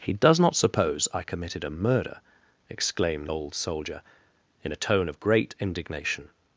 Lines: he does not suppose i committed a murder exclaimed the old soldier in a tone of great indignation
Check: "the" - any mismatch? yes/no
yes